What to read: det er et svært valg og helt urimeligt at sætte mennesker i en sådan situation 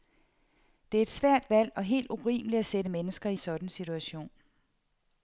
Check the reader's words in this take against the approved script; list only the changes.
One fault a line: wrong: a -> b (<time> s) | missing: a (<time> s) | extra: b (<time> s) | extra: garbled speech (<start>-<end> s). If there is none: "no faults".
missing: en (3.4 s)